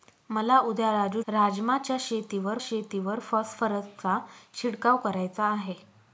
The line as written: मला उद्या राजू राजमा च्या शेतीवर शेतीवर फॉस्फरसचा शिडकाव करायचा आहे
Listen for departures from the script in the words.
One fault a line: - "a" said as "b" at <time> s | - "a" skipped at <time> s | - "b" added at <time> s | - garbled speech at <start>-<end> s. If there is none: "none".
none